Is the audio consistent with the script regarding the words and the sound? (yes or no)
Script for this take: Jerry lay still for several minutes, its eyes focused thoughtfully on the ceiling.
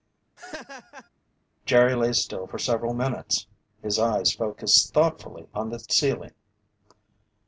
no